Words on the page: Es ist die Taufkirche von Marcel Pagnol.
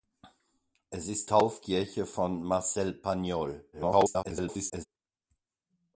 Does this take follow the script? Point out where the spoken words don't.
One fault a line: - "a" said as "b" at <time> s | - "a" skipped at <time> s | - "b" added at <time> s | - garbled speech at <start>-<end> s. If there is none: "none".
- "die" skipped at 1.3 s
- garbled speech at 3.7-4.9 s